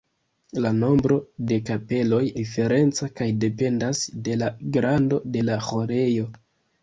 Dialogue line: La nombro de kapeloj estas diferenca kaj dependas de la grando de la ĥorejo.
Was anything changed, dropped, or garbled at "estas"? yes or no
yes